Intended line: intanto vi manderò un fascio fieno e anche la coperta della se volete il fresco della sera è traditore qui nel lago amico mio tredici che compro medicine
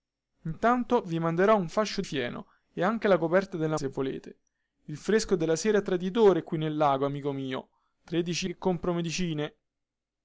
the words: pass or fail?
pass